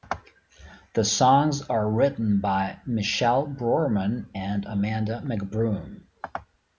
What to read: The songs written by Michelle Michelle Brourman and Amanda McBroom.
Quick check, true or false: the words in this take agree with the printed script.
false